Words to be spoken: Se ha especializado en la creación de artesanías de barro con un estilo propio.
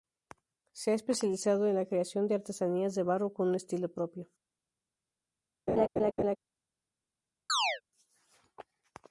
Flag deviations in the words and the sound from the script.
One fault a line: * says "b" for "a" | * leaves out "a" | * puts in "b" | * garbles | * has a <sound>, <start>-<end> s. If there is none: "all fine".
* has a laugh, 5.7-6.4 s
* has a chirp, 7.5-7.8 s